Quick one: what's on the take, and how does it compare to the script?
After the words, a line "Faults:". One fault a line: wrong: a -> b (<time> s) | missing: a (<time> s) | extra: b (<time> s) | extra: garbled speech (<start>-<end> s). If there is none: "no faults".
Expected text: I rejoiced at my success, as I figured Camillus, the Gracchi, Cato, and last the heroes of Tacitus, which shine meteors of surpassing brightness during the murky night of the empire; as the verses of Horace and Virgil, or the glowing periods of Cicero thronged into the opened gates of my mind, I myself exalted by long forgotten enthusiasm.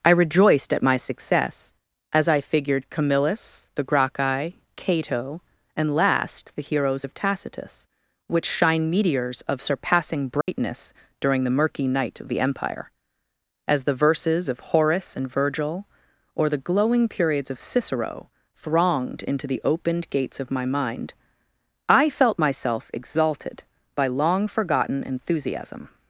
I rejoiced at my success, as I figured Camillus, the Gracchi, Cato, and last the heroes of Tacitus, which shine meteors of surpassing brightness during the murky night of the empire; as the verses of Horace and Virgil, or the glowing periods of Cicero thronged into the opened gates of my mind, I felt myself exalted by long forgotten enthusiasm.
Faults:
extra: felt (22.1 s)